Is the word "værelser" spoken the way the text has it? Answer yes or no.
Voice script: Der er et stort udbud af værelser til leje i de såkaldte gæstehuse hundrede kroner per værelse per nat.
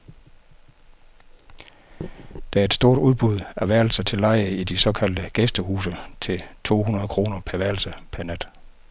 yes